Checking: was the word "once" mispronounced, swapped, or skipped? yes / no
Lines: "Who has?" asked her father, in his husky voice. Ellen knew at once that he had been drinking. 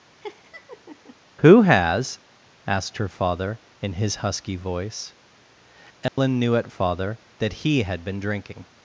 yes